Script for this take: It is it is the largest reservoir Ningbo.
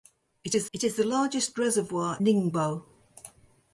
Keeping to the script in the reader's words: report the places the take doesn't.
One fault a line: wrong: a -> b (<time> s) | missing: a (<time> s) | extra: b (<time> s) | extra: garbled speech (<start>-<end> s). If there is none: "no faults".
no faults